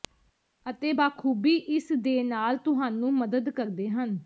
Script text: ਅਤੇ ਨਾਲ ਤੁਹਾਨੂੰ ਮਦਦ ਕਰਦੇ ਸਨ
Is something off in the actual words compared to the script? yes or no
yes